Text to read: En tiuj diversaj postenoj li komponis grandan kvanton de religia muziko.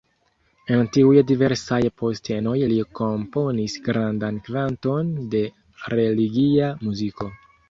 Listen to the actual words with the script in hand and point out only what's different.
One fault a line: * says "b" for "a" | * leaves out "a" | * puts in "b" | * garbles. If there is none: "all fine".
all fine